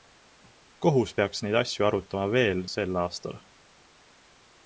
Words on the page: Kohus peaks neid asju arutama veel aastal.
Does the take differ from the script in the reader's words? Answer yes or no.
yes